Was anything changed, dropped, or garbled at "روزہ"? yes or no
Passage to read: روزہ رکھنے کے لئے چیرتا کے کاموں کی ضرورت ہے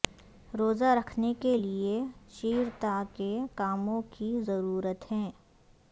no